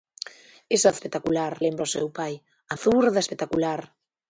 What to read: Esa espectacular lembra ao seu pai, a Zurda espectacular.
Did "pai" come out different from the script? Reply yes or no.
no